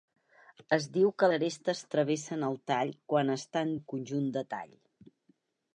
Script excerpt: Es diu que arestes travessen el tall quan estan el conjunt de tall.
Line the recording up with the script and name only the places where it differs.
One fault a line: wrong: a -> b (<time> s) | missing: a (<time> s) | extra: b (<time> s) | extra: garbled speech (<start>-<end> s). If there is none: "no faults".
no faults